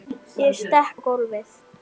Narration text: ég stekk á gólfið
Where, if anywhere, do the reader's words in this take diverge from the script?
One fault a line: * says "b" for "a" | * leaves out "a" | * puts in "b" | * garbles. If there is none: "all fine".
all fine